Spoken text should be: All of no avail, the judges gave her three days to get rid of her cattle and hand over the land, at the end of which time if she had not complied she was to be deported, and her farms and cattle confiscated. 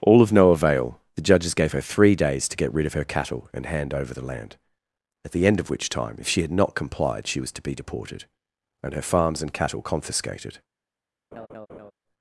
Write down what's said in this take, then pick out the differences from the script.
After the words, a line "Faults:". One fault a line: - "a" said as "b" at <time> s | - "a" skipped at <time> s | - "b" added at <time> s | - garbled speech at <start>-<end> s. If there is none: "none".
All of no avail, the judges gave her three days to get rid of her cattle and hand over the land, at the end of which time if she had not complied she was to be deported, and her farms and cattle confiscated.
Faults:
none